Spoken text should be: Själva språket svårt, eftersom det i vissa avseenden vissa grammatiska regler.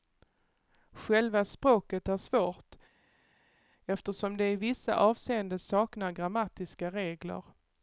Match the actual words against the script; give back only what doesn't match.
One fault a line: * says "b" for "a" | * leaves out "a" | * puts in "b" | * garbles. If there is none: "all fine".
* puts in "är"
* says "saknar" for "vissa"